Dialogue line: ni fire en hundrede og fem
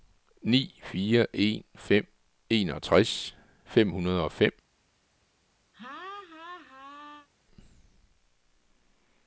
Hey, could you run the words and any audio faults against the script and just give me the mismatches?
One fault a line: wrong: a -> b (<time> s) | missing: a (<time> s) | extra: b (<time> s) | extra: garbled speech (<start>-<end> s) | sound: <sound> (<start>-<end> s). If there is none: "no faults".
extra: fem enogtres fem (1.8 s)
sound: laugh (5.7-7.3 s)